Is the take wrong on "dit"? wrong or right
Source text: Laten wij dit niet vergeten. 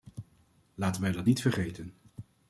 wrong